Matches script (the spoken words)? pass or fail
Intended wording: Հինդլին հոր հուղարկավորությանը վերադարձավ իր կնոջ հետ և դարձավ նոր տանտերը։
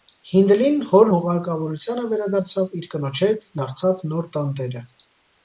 fail